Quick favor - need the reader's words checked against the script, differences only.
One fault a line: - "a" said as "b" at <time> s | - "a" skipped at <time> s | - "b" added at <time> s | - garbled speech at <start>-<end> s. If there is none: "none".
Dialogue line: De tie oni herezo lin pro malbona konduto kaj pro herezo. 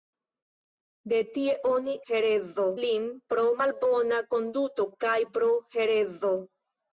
none